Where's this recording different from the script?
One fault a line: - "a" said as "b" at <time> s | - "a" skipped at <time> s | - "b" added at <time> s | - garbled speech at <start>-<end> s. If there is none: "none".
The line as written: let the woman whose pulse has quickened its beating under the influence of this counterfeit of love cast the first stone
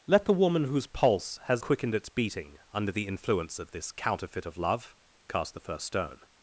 none